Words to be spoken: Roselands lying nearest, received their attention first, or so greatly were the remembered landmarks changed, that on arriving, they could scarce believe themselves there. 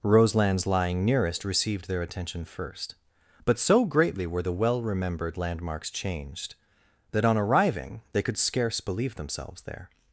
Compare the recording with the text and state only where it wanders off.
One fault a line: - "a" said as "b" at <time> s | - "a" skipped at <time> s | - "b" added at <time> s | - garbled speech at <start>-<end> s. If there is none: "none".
- "or" said as "but" at 3.4 s
- "well" added at 4.5 s